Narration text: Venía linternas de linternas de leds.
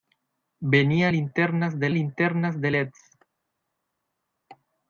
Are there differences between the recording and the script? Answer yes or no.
no